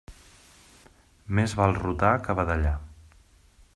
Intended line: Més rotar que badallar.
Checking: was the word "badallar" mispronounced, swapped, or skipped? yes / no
no